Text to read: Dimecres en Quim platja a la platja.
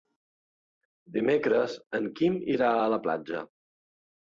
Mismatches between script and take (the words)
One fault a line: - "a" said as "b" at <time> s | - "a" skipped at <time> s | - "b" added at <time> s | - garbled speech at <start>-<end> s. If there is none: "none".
- "platja" said as "irà" at 2.6 s